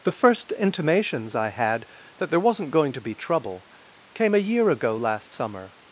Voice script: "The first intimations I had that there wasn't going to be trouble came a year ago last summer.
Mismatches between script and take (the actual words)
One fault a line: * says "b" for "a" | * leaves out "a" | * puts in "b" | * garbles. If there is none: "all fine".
all fine